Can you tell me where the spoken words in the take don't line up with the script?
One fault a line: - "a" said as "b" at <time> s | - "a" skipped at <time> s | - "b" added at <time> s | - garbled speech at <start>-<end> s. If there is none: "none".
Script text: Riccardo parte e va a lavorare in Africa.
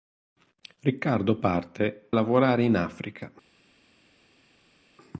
- "e va" skipped at 2.1 s